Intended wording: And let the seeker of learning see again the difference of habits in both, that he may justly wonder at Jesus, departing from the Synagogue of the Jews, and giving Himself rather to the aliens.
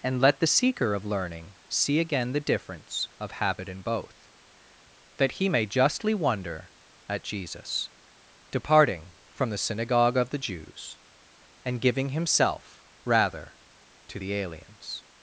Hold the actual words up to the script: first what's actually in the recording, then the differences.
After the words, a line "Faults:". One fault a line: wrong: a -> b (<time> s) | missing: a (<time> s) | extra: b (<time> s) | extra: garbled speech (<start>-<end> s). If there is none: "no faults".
And let the seeker of learning see again the difference of habit in both, that he may justly wonder at Jesus, departing from the Synagogue of the Jews, and giving Himself rather to the aliens.
Faults:
wrong: habits -> habit (3.3 s)